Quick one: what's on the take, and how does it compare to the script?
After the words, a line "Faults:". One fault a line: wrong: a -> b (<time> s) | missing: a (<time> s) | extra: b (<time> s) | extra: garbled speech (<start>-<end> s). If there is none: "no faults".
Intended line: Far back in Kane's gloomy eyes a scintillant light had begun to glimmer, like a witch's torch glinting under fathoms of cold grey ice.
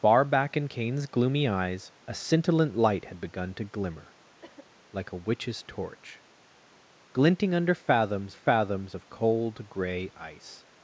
Far back in Kane's gloomy eyes a scintillant light had begun to glimmer, like a witch's torch glinting under fathoms fathoms of cold grey ice.
Faults:
extra: fathoms (8.3 s)